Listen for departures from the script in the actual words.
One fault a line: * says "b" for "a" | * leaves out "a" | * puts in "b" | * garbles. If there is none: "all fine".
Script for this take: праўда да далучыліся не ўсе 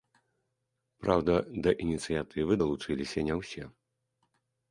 * puts in "ініцыятывы"